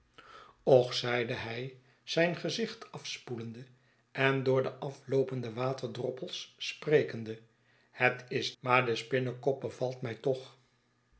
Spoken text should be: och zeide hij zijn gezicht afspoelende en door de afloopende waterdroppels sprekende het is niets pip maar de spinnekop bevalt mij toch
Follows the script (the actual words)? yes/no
no